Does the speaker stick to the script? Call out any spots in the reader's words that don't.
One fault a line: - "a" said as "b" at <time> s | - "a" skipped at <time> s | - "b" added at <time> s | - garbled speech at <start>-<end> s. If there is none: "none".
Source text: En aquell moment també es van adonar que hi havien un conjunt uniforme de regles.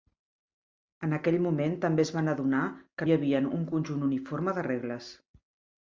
none